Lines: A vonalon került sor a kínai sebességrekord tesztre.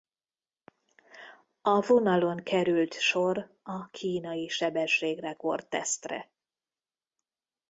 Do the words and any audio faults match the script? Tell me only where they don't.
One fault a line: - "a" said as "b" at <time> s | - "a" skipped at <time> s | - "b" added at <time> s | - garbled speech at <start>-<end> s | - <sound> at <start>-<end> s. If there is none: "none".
none